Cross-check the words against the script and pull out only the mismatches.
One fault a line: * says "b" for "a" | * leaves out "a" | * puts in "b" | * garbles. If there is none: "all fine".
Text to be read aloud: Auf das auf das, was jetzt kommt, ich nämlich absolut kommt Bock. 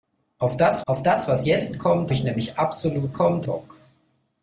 all fine